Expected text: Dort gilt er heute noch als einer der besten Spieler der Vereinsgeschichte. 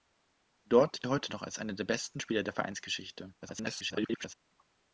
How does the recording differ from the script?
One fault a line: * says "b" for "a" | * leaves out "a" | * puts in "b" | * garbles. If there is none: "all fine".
* leaves out "gilt"
* garbles